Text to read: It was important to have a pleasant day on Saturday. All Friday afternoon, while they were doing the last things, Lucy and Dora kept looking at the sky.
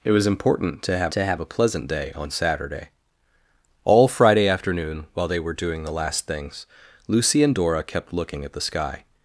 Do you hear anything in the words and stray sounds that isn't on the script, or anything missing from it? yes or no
yes